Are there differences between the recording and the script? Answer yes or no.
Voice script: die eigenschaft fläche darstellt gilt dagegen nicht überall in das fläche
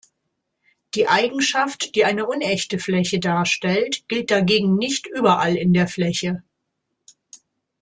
yes